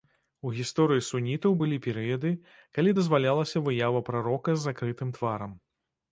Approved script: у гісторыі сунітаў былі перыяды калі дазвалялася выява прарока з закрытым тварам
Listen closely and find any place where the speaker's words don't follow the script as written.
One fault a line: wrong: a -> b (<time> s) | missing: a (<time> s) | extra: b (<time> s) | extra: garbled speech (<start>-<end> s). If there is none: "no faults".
no faults